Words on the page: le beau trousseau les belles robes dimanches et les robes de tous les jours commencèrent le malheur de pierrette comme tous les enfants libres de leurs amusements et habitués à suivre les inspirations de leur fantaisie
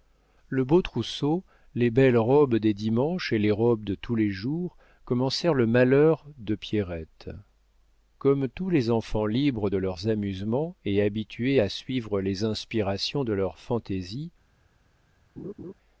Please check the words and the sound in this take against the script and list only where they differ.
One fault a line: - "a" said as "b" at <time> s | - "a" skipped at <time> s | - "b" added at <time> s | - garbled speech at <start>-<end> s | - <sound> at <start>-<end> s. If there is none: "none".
- "des" added at 2.5 s
- laugh at 15.4-15.7 s